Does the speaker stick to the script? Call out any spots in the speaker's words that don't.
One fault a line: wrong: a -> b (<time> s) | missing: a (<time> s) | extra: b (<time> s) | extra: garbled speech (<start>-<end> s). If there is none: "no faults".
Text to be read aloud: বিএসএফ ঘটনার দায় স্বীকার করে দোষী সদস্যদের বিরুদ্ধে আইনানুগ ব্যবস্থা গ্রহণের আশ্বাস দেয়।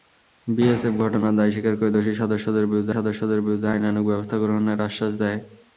extra: সদস্যদের বিরুদ্ধে (2.9 s)